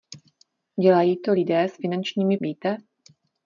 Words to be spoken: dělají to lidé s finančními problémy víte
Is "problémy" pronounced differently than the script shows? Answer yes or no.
yes